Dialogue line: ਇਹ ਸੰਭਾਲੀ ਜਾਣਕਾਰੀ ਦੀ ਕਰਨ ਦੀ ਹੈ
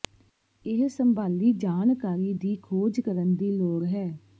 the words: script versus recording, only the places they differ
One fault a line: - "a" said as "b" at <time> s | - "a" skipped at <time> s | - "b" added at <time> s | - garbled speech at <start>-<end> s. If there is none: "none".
- "ਖੋਜ" added at 2.6 s
- "ਲੋੜ" added at 3.5 s